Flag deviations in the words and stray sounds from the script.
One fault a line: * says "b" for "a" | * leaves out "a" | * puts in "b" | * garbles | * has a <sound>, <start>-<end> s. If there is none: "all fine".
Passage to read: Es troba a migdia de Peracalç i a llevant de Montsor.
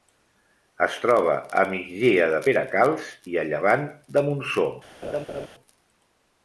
* has a laugh, 5.0-5.5 s